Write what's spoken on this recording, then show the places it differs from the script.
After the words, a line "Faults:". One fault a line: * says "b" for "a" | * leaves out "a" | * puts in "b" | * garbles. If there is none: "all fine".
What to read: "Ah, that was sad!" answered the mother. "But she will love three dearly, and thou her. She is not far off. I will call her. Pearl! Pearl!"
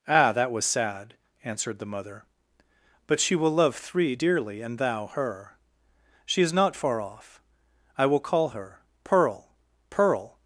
"Ah, that was sad!" answered the mother. "But she will love three dearly, and thou her. She is not far off. I will call her. Pearl! Pearl!"
Faults:
all fine